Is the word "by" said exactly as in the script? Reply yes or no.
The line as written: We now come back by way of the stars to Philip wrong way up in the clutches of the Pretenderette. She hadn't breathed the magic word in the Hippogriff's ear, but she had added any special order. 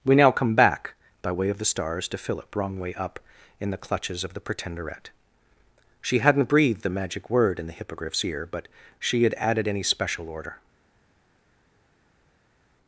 yes